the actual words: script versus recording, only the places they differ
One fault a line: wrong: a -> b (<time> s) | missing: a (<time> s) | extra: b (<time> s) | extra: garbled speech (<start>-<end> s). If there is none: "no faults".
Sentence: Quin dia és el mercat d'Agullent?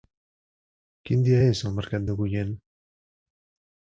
no faults